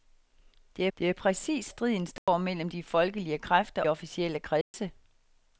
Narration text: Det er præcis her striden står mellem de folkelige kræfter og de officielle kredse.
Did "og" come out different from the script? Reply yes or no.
yes